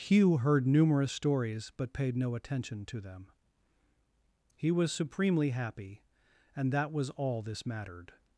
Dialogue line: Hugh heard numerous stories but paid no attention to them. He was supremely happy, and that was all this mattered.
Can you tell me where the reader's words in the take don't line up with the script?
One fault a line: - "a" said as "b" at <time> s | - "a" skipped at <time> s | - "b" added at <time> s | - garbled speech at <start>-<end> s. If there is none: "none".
none